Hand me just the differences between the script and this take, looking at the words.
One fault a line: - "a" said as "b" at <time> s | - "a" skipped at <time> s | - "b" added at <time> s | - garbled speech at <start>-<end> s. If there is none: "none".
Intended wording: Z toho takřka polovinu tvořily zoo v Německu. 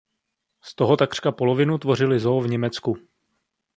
none